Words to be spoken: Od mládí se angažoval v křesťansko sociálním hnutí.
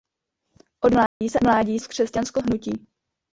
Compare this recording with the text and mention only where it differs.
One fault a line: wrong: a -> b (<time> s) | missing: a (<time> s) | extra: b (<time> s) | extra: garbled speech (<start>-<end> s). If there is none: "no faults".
wrong: angažoval -> mládí (1.4 s)
missing: sociálním (2.4 s)